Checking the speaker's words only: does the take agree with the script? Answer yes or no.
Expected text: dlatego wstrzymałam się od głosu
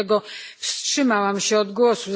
yes